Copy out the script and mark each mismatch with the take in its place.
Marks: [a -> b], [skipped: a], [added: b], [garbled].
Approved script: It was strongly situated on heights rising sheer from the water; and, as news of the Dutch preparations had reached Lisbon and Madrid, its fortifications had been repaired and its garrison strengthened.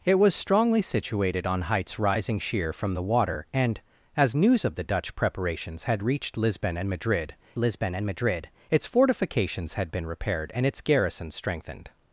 It was strongly situated on heights rising sheer from the water; and, as news of the Dutch preparations had reached Lisbon and Madrid, [added: Lisbon and Madrid] its fortifications had been repaired and its garrison strengthened.